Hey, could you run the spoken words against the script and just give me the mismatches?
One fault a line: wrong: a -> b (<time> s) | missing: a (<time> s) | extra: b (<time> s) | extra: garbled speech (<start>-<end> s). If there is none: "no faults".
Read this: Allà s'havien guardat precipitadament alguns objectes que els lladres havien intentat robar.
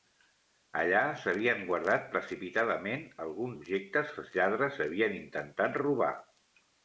no faults